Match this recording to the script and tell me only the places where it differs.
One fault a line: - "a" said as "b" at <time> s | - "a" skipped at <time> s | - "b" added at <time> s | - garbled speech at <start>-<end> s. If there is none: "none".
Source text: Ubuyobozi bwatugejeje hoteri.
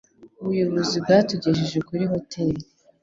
- "kuri" added at 1.9 s